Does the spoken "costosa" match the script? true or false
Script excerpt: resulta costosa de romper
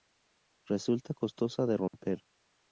true